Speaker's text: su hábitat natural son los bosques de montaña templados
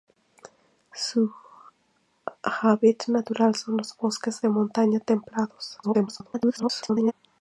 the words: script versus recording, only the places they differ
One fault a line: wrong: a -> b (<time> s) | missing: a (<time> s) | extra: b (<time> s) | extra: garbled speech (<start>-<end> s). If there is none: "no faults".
extra: garbled speech (5.8-7.1 s)